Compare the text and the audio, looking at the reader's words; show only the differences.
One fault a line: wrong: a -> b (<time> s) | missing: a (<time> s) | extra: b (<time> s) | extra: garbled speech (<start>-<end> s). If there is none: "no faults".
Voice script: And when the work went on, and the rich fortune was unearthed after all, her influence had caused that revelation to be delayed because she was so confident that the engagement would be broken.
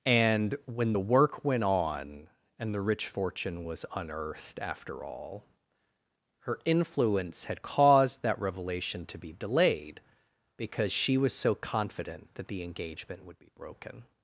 no faults